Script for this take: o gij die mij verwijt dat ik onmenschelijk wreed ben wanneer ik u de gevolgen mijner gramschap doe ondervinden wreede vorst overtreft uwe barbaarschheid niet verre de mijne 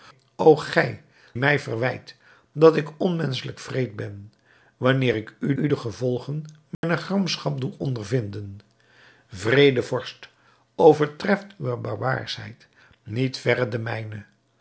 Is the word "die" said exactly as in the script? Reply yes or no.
no